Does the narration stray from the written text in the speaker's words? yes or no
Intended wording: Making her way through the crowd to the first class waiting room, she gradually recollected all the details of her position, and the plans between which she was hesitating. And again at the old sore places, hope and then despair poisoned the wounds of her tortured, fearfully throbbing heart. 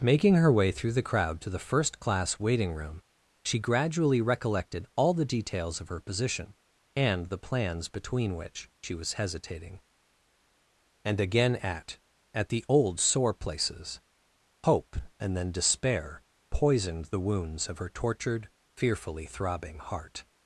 yes